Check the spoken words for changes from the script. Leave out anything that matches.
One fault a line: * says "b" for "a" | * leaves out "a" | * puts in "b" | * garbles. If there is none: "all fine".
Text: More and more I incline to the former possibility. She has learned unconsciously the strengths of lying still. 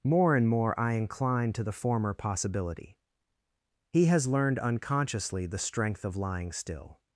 * says "He" for "She"
* says "strength" for "strengths"